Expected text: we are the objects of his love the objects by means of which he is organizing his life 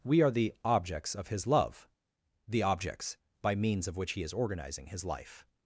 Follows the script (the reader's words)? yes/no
yes